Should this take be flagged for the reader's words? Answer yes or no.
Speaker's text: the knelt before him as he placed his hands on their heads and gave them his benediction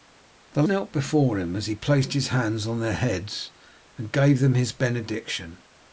no